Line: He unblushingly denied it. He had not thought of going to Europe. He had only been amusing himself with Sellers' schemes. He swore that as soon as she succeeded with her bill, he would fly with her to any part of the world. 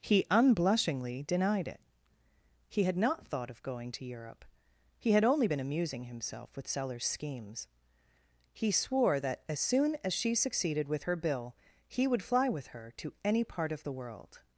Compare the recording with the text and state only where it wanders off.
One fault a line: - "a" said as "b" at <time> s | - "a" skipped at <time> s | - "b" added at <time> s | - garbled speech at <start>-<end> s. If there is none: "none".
none